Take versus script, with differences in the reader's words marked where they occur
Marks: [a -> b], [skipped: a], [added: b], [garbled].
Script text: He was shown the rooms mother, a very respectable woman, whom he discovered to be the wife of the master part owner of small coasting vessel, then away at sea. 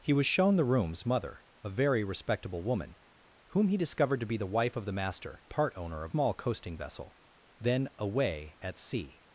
He was shown the rooms mother, a very respectable woman, whom he discovered to be the wife of the master part owner of small coasting vessel, then away at sea.